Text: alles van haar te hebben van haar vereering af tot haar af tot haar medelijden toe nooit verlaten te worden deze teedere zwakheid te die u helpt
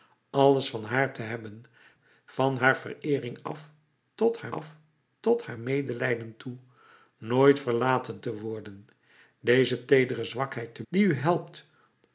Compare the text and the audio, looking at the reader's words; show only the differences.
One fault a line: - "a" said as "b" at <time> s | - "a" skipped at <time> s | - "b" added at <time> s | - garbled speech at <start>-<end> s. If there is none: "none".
none